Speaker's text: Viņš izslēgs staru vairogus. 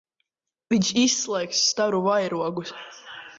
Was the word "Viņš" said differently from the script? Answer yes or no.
no